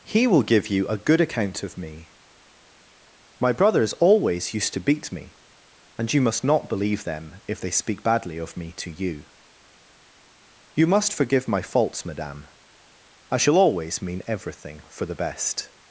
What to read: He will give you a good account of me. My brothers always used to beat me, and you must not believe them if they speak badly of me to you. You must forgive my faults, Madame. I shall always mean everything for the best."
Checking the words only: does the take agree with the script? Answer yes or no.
yes